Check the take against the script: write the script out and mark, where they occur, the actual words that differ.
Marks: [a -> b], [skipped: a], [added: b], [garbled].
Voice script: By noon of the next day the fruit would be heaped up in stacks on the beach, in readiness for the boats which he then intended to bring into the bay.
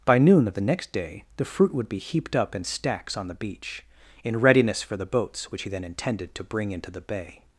By noon of the next day the fruit would be heaped up in stacks on the beach, in readiness for the boats which he then intended to bring into the bay.